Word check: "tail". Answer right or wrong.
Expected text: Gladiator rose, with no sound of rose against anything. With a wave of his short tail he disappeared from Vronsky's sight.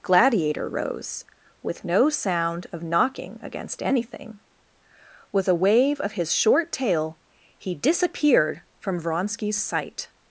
right